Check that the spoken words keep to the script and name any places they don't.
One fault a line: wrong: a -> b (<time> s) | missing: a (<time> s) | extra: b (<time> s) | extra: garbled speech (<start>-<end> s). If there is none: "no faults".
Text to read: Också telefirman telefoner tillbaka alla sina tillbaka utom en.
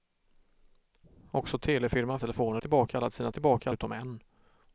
no faults